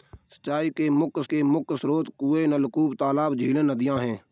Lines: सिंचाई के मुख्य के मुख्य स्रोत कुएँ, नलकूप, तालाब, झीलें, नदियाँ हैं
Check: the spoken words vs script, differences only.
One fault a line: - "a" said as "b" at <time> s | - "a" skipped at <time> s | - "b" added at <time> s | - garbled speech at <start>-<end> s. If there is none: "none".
none